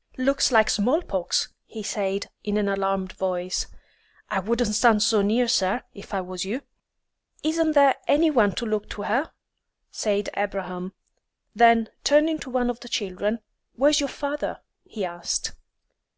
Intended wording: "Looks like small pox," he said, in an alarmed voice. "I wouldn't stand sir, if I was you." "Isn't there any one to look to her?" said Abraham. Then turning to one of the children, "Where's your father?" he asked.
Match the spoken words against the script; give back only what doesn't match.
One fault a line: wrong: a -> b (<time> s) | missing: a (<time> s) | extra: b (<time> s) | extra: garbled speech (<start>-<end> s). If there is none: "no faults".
extra: so near (5.0 s)